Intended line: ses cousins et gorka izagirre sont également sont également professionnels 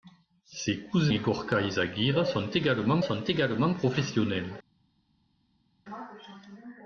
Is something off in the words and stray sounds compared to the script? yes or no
no